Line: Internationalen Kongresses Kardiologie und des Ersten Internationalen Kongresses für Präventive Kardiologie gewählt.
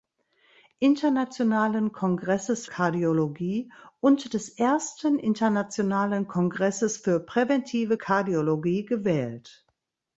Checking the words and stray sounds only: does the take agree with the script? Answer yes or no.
yes